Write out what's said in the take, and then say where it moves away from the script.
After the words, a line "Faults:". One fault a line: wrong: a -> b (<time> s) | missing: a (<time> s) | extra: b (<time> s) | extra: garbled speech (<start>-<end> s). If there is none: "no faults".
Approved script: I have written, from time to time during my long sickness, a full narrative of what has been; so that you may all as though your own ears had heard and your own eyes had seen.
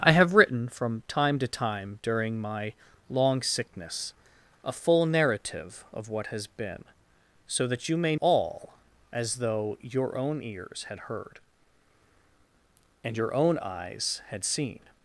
I have written, from time to time during my long sickness, a full narrative of what has been; so that you may all as though your own ears had heard and your own eyes had seen.
Faults:
no faults